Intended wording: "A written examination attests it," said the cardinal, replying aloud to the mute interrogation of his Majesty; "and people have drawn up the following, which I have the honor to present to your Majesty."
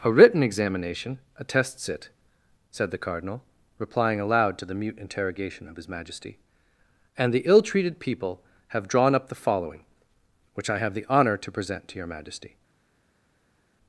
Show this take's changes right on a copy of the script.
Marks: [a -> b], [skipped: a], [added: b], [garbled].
"A written examination attests it," said the cardinal, replying aloud to the mute interrogation of his Majesty; "and [added: the ill treated] people have drawn up the following, which I have the honor to present to your Majesty."